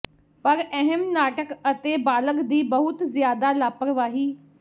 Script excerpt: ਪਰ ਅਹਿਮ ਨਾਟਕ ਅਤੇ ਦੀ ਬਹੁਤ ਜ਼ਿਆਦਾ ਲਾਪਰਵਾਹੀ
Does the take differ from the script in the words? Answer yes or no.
yes